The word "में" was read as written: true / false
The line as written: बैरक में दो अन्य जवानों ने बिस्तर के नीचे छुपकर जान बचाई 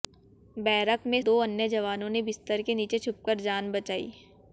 true